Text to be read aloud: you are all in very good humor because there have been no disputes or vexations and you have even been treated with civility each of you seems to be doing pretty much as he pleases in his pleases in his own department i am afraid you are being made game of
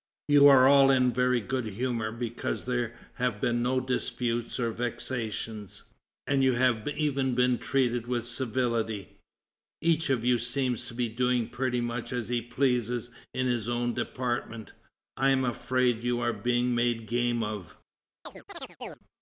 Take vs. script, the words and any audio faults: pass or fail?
fail